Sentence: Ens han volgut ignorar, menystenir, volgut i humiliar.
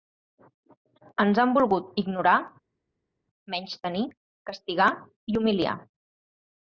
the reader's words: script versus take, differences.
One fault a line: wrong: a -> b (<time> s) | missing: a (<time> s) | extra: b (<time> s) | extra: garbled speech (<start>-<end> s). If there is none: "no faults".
wrong: volgut -> castigar (4.5 s)